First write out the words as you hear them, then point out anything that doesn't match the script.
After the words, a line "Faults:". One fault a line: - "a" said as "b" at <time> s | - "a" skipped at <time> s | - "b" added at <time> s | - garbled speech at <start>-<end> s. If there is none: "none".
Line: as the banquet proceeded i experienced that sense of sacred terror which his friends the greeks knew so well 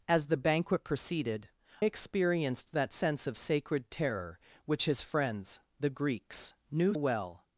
as the banquet proceeded experienced that sense of sacred terror which his friends the greeks knew well
Faults:
- "i" skipped at 1.5 s
- "so" skipped at 6.9 s